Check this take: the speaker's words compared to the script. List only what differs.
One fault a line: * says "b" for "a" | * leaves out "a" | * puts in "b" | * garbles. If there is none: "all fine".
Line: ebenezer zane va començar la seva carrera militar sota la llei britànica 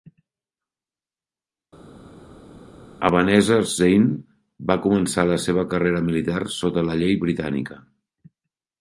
all fine